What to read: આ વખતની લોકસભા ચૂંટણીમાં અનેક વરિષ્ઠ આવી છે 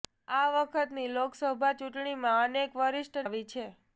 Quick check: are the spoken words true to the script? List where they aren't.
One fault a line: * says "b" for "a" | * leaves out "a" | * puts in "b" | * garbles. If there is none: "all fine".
all fine